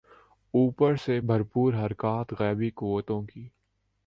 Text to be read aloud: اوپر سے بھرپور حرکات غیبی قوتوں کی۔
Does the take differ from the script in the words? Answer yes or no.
no